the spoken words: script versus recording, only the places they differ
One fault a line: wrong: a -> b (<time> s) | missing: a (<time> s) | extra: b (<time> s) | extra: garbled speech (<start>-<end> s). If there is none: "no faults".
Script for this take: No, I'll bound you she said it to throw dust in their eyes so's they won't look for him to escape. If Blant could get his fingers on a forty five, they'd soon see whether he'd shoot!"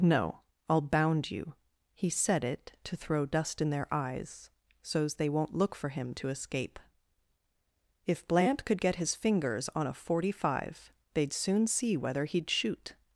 wrong: she -> he (1.9 s)